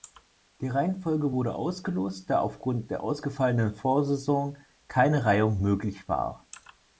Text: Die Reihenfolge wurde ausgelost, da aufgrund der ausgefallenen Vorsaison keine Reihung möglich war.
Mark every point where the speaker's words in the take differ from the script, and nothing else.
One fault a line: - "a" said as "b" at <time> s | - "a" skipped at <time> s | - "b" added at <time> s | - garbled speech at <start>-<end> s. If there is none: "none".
none